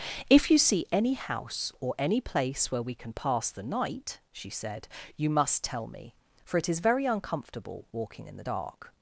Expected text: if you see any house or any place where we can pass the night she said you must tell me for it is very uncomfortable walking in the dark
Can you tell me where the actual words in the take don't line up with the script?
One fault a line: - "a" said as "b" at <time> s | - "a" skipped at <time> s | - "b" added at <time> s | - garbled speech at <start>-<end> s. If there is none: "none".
none